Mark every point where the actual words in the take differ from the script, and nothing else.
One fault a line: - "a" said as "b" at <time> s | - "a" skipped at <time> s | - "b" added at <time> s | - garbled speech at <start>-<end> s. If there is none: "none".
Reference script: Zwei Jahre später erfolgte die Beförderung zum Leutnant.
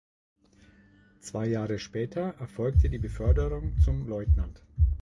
none